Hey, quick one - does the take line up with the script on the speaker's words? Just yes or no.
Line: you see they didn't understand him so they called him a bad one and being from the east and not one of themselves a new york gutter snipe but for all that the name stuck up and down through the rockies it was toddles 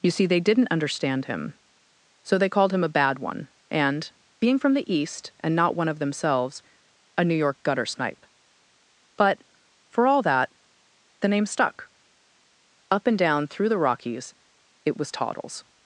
yes